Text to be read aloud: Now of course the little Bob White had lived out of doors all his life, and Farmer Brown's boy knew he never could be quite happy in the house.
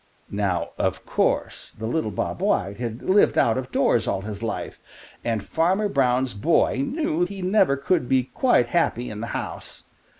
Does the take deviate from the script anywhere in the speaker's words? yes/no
no